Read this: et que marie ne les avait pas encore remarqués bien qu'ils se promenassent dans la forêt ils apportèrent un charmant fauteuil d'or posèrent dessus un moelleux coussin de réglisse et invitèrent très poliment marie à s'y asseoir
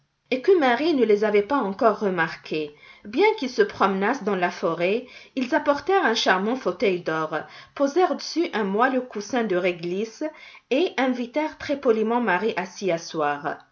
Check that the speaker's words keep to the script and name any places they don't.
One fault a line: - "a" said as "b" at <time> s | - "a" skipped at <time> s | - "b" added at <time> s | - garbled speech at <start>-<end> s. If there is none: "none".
none